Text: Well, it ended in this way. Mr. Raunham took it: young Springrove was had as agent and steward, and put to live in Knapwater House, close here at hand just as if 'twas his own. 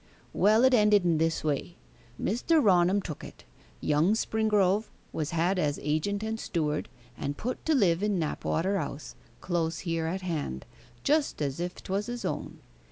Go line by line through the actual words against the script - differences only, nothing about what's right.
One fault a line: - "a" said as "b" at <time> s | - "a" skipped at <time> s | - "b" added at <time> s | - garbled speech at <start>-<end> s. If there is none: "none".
none